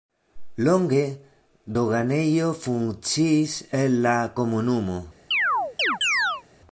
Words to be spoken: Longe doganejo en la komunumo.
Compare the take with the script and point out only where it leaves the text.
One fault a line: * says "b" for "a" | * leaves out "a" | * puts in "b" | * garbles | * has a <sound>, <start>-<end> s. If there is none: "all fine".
* puts in "funkciis"
* has a chirp, 5.3-6.4 s